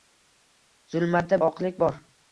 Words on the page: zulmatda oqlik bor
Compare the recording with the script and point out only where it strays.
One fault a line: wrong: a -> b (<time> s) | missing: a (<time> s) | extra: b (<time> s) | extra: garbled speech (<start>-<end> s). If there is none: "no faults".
no faults